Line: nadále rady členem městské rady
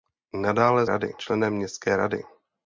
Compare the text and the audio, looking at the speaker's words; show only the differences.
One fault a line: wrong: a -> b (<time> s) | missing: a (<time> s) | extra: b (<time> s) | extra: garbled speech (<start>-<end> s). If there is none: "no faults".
no faults